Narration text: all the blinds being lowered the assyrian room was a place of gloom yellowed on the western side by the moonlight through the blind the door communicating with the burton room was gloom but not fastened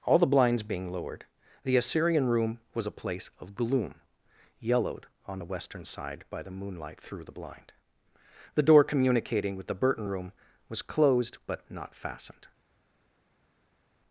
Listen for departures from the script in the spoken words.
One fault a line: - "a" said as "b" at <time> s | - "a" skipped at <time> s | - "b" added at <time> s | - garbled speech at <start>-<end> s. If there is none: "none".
- "gloom" said as "closed" at 10.8 s